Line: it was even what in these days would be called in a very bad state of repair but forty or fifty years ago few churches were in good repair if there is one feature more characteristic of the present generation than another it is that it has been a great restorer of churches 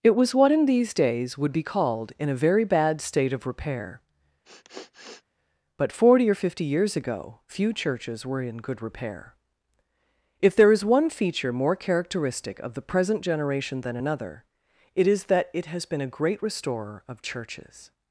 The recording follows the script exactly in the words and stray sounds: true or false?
false